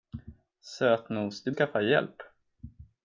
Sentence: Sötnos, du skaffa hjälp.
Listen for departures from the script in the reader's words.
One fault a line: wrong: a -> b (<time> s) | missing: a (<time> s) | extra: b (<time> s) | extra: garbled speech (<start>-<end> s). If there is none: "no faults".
no faults